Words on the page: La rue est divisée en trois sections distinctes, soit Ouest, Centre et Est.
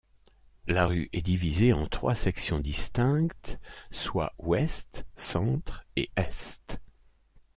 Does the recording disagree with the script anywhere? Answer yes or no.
no